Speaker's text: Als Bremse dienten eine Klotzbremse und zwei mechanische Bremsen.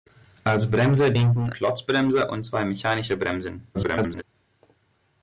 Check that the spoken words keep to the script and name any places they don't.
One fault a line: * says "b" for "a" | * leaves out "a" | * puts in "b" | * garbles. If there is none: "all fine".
* leaves out "eine"
* garbles